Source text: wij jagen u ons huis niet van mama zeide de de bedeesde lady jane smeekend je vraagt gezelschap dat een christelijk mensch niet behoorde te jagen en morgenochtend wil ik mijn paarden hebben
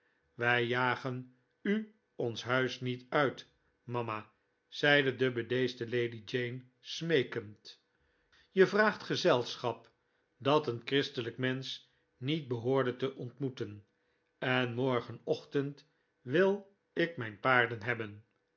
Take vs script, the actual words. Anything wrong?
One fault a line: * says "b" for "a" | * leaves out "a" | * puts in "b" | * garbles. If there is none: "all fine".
* says "uit" for "van"
* leaves out "de"
* says "ontmoeten" for "jagen"